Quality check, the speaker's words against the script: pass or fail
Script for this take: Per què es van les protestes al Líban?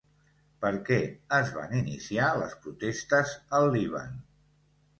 fail